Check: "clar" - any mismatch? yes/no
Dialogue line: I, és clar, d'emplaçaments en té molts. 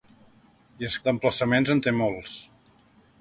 yes